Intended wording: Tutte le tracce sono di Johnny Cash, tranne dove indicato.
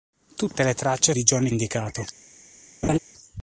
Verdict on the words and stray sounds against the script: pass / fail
fail